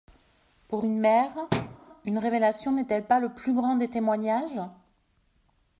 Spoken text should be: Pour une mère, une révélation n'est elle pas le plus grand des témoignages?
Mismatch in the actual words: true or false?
false